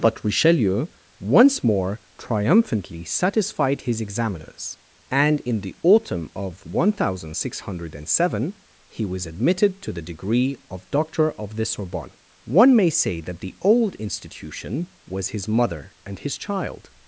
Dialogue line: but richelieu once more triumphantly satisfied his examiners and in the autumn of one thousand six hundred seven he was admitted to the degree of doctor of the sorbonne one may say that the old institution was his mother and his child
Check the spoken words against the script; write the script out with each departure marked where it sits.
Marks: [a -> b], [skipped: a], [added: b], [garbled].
but richelieu once more triumphantly satisfied his examiners and in the autumn of one thousand six hundred seven he was admitted to the degree of doctor of the sorbonne one may say that the old institution was his mother and his child